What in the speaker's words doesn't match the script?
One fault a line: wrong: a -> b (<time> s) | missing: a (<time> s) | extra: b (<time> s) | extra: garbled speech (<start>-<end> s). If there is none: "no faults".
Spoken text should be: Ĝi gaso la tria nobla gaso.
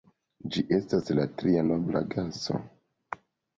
wrong: gaso -> estas (0.8 s)